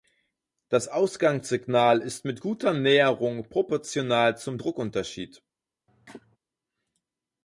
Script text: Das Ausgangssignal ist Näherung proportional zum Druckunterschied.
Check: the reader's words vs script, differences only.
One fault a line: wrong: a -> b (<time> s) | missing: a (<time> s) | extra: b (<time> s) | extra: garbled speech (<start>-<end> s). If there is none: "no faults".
extra: mit guter (2.2 s)